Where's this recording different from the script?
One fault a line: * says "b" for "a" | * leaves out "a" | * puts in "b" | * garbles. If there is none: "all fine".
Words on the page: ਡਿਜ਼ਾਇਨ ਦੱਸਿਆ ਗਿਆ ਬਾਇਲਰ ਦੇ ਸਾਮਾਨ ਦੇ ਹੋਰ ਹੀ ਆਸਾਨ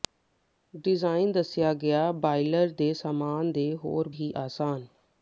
all fine